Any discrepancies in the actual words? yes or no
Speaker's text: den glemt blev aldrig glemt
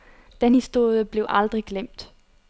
yes